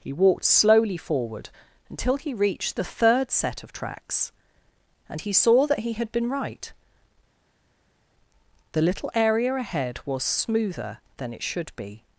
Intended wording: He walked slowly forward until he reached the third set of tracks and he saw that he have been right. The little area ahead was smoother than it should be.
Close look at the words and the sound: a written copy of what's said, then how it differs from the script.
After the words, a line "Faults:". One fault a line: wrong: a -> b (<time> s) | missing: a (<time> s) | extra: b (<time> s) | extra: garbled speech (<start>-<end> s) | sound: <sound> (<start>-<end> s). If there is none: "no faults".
He walked slowly forward until he reached the third set of tracks and he saw that he had been right. The little area ahead was smoother than it should be.
Faults:
wrong: have -> had (5.9 s)